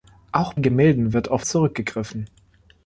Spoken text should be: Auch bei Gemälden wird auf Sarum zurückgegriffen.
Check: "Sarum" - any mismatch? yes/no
yes